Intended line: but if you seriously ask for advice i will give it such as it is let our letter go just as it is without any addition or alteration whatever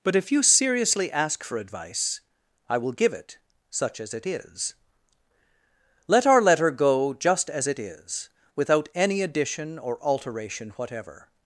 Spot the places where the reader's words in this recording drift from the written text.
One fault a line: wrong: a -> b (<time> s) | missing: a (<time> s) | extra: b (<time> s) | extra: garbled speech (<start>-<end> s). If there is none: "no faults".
no faults